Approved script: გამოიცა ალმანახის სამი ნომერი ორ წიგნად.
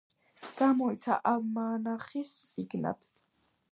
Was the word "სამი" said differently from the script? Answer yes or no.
yes